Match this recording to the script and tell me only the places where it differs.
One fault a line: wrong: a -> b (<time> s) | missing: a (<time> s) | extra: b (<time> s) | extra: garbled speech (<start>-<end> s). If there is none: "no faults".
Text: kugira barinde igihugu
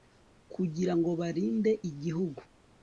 extra: ngo (1.0 s)